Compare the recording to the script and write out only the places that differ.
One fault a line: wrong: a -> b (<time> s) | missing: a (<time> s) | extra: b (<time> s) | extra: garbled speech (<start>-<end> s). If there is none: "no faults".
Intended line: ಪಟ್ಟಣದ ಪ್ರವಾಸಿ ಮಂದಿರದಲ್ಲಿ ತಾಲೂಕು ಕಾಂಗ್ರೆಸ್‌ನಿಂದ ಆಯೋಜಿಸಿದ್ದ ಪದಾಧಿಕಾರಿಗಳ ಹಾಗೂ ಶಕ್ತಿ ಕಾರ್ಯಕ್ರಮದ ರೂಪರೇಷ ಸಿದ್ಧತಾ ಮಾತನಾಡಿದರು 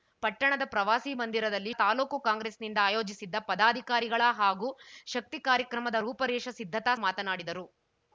no faults